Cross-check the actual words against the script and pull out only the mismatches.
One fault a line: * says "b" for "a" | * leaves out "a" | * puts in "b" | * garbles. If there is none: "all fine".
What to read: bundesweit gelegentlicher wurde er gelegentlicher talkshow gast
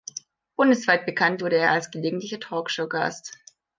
* says "bekannt" for "gelegentlicher"
* puts in "als"